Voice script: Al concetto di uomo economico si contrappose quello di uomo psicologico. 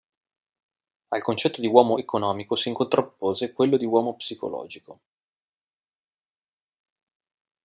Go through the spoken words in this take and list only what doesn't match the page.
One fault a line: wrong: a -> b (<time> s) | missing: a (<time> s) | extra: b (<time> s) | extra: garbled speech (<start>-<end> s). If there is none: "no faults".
no faults